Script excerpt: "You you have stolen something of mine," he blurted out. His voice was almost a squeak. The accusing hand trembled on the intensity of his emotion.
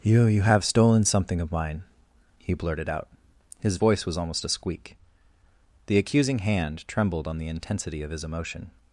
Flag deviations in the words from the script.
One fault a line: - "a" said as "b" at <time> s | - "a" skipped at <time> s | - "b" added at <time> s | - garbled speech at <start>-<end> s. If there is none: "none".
none